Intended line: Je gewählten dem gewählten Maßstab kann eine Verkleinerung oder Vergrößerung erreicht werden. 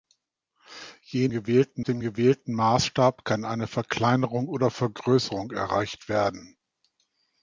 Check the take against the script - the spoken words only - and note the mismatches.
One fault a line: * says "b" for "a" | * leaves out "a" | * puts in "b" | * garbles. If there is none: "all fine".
all fine